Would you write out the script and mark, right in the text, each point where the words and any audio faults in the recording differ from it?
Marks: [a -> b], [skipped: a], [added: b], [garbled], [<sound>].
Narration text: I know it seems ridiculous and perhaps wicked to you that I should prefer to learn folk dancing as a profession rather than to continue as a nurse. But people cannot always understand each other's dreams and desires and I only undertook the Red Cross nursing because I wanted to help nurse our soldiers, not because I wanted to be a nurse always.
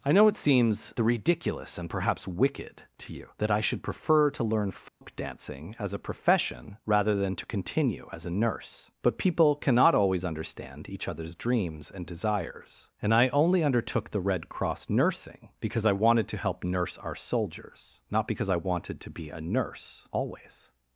I know it seems ridiculous and perhaps wicked to you that I should prefer to learn folk [dropout] dancing as a profession rather than to continue as a nurse. But people cannot always understand each other's dreams and desires and I only undertook the Red Cross nursing because I wanted to help nurse our soldiers, not because I wanted to be a nurse always.